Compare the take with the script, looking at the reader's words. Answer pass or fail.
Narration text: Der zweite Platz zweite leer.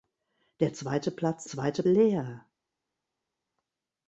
pass